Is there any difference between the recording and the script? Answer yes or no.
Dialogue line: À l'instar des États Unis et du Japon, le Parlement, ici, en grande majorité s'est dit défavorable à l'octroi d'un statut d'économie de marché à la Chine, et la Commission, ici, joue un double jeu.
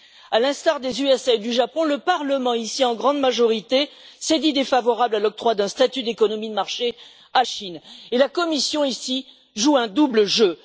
yes